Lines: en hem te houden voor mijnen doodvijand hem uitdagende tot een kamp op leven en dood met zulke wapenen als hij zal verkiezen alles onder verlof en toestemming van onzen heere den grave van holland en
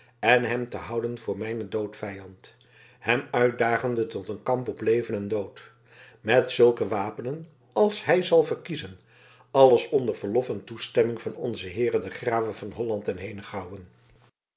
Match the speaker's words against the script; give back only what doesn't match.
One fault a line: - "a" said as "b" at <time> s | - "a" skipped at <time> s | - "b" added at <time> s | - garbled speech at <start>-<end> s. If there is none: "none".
none